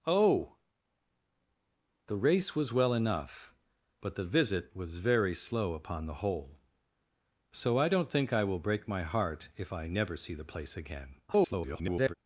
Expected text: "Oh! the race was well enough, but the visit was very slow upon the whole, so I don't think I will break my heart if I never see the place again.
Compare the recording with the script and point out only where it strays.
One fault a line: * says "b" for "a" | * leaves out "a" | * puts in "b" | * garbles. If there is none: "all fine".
* garbles